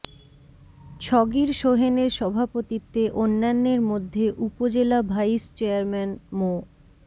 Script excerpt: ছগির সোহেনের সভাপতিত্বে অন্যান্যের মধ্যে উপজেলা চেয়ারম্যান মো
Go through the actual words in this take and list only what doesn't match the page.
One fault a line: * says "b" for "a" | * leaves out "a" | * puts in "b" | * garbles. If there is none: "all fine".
* puts in "ভাইস"